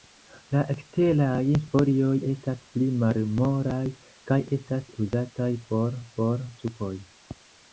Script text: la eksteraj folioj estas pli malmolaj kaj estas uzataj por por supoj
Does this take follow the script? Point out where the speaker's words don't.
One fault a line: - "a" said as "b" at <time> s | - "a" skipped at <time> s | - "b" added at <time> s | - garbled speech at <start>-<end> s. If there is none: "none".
none